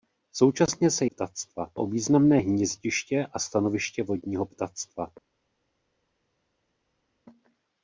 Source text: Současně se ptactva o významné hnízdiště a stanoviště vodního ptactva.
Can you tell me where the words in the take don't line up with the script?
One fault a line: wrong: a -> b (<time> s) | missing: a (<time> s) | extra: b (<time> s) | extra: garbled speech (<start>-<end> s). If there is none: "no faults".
no faults